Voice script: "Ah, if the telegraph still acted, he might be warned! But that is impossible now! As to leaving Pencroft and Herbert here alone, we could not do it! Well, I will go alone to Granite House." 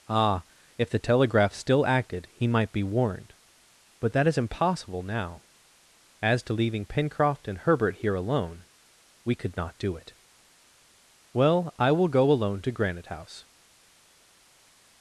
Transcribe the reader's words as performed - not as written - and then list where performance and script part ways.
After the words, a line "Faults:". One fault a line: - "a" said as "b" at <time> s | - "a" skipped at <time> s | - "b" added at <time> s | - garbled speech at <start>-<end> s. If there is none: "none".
"Ah, if the telegraph still acted, he might be warned! But that is impossible now! As to leaving Pencroft and Herbert here alone, we could not do it! Well, I will go alone to Granite House."
Faults:
none